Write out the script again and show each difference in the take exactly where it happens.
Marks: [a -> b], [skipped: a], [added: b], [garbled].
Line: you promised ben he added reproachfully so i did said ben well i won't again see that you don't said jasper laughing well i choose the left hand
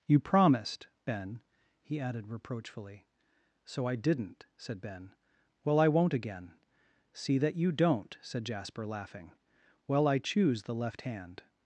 you promised ben he added reproachfully so i [did -> didn't] said ben well i won't again see that you don't said jasper laughing well i choose the left hand